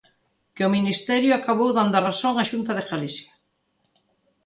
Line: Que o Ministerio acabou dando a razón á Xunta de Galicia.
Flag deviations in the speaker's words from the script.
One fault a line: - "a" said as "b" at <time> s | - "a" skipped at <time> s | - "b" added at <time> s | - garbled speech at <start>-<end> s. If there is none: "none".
none